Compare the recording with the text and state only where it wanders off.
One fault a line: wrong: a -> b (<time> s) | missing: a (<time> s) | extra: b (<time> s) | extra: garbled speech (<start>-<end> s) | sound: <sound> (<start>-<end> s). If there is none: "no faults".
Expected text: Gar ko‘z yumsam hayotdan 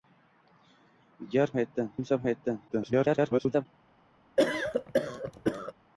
wrong: ko‘z -> hayotdan (1.6 s)
extra: garbled speech (2.7-3.7 s)
sound: cough (4.4-5.7 s)